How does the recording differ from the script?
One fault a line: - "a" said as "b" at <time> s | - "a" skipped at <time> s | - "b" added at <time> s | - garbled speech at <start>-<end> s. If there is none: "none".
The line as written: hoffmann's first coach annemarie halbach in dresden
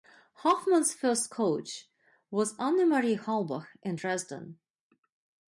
- "was" added at 2.3 s